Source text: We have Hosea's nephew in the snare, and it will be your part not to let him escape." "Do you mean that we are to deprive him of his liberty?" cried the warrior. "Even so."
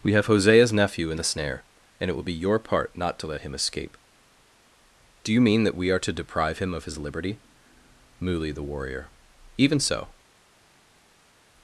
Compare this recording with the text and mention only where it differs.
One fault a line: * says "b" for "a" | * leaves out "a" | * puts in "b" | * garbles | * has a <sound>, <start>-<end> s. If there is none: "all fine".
* says "muli" for "cried"